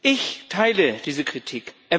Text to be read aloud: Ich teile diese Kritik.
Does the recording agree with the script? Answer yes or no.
yes